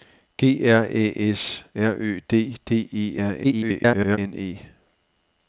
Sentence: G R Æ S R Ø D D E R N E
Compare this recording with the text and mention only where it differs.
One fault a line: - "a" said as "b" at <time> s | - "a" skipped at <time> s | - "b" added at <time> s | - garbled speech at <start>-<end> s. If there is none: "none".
- garbled speech at 3.4-4.2 s